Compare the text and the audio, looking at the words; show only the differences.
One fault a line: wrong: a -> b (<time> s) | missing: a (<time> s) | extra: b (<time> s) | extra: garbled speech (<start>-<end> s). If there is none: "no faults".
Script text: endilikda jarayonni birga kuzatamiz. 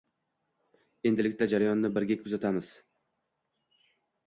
no faults